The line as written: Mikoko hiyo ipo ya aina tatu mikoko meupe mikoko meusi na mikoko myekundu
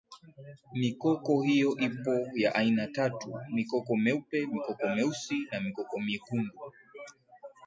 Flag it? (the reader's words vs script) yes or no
no